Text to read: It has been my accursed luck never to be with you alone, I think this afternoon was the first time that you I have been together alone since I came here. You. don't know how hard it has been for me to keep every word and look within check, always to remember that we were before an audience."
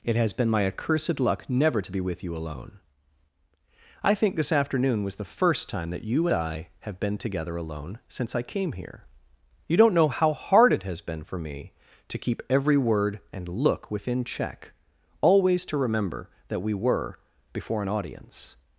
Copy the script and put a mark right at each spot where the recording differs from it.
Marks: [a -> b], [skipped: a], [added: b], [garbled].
It has been my accursed luck never to be with you alone, I think this afternoon was the first time that you I have been together alone since I came here. You. don't know how hard it has been for me to keep every word and look within check, always to remember that we were before an audience."